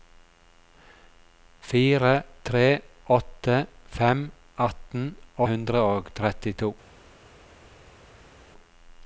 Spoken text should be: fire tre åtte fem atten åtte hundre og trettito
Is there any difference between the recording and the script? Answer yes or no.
yes